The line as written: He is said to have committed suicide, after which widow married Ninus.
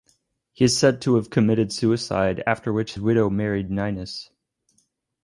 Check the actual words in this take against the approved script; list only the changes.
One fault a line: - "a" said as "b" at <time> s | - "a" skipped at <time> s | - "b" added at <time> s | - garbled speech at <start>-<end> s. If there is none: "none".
none